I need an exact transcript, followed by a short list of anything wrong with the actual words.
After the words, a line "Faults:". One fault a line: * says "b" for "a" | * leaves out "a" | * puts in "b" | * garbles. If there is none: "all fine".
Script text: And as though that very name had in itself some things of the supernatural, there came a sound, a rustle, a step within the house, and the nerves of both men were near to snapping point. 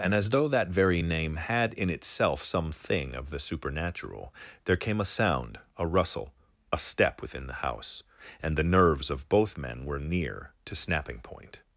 And as though that very name had in itself some thing of the supernatural, there came a sound, a rustle, a step within the house, and the nerves of both men were near to snapping point.
Faults:
* says "thing" for "things"